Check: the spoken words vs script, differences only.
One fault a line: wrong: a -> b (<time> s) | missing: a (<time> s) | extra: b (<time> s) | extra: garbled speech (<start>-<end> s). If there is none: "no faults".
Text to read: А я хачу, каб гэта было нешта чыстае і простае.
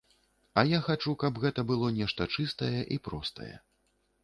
no faults